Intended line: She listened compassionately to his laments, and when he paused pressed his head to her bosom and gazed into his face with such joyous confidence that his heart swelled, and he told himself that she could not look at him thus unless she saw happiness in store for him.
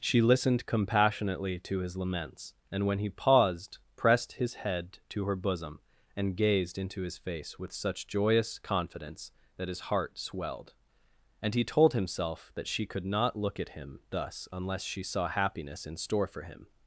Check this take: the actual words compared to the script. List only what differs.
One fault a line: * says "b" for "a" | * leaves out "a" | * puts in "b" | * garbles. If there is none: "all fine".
all fine